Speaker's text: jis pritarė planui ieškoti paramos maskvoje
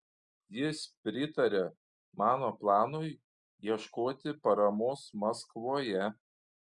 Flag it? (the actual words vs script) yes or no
yes